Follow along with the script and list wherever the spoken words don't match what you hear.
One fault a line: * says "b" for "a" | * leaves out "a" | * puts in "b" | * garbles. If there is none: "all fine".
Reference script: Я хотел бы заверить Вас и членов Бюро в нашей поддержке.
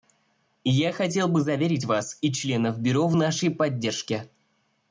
all fine